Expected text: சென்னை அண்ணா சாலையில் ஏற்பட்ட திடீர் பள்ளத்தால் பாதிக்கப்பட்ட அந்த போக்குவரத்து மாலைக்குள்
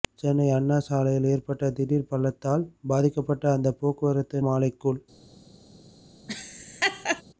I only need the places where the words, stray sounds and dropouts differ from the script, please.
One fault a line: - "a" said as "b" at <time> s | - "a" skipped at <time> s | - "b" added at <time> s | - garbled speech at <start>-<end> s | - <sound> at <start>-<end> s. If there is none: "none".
- laugh at 6.3-7.2 s